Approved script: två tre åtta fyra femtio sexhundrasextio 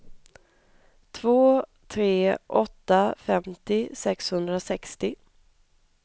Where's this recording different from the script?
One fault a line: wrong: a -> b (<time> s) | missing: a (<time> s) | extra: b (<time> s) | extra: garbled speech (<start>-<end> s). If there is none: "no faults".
missing: fyra (3.1 s)